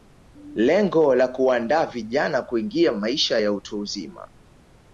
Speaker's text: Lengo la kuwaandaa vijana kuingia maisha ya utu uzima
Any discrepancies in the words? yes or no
no